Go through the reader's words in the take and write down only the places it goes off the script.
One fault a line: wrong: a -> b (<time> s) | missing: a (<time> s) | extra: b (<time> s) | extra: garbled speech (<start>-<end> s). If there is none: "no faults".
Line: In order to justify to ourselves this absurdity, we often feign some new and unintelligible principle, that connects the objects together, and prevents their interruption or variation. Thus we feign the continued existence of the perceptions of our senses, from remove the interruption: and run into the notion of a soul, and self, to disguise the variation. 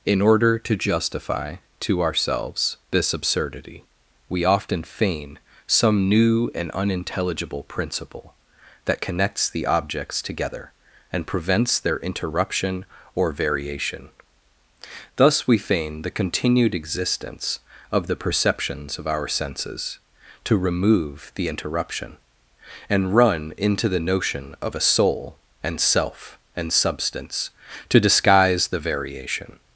wrong: from -> to (20.4 s)
extra: and substance (26.6 s)